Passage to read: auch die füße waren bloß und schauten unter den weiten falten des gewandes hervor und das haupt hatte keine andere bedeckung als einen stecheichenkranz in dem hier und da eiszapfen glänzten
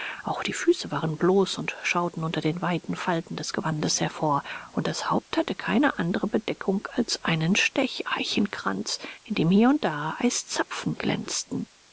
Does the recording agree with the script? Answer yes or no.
yes